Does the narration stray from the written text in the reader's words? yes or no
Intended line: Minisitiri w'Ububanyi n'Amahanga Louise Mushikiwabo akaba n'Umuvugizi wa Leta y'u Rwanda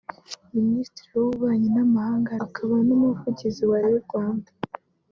yes